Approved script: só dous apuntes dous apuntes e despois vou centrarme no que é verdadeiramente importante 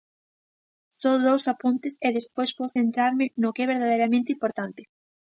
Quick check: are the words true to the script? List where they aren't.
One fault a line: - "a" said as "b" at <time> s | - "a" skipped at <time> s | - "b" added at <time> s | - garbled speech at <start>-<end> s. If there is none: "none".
- "dous apuntes" skipped at 1.9 s